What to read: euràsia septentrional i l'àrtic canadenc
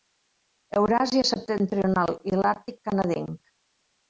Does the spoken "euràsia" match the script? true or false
true